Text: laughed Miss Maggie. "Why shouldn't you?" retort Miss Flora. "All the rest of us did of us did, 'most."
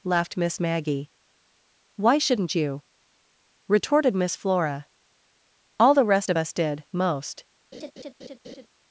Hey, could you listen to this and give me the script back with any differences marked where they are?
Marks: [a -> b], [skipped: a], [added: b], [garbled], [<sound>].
laughed Miss Maggie. "Why shouldn't you?" [retort -> retorted] Miss Flora. "All the rest of us did [skipped: of us did,] 'most." [laugh]